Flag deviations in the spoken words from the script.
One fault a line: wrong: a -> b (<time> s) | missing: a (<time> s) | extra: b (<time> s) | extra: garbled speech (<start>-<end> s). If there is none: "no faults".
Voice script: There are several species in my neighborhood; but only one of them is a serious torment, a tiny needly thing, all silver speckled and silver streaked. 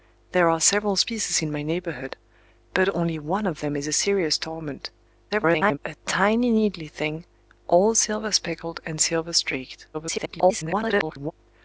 extra: garbled speech (5.3-5.8 s)
extra: garbled speech (9.9-11.3 s)